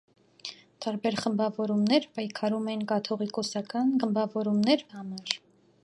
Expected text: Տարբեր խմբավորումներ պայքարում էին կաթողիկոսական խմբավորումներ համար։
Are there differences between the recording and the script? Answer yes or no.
no